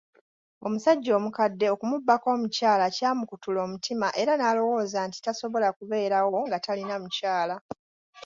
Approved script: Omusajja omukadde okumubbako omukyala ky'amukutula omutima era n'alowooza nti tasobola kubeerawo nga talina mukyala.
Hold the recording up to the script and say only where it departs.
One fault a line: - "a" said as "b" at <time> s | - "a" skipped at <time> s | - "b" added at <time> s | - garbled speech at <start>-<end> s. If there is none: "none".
none